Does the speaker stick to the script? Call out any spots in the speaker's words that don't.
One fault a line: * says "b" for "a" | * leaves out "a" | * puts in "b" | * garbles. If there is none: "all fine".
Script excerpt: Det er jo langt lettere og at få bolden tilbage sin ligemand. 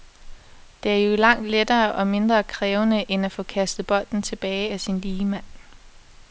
* puts in "mindre krævende end"
* puts in "kastet"
* puts in "af"